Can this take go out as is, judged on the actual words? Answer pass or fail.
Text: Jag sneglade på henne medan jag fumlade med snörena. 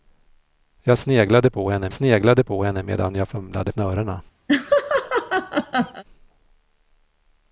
fail